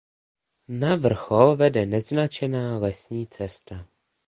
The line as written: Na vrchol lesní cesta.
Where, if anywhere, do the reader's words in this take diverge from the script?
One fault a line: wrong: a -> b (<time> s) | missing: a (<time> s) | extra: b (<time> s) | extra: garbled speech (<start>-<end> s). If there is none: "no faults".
extra: vede neznačená (1.6 s)